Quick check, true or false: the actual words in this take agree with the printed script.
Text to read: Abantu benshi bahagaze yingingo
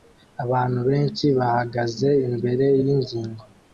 false